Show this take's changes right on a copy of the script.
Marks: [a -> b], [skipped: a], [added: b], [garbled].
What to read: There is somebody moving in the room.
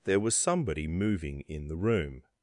There [is -> was] somebody moving in the room.